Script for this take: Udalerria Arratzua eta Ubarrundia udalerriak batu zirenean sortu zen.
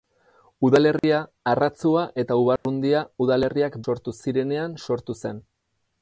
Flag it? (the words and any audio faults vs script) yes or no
yes